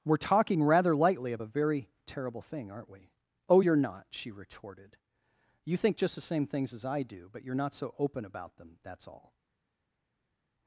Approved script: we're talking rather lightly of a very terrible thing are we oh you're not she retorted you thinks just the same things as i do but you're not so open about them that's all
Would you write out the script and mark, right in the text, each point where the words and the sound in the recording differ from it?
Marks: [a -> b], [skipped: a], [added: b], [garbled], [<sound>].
we're talking rather lightly of a very terrible thing [are -> aren't] we oh you're not she retorted you [thinks -> think] just the same things as i do but you're not so open about them that's all